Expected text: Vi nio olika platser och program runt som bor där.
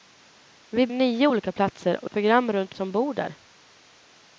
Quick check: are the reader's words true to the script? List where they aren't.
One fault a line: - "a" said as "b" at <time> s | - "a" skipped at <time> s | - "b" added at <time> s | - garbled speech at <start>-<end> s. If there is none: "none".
none